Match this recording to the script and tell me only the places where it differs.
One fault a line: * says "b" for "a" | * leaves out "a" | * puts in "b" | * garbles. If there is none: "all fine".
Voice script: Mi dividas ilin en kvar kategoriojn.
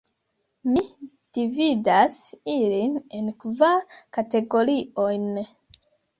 all fine